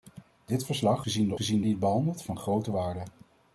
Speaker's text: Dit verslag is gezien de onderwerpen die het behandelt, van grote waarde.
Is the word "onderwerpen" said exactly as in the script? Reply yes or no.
no